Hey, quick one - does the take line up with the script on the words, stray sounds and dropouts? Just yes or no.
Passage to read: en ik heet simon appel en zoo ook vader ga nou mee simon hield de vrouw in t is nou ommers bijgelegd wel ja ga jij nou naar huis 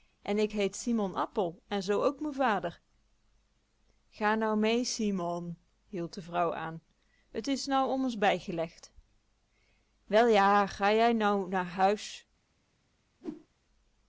no